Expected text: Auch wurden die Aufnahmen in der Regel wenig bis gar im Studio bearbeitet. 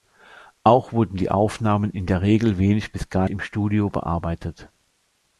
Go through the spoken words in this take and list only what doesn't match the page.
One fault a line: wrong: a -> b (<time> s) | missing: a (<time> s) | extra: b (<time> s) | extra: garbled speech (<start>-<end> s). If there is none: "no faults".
no faults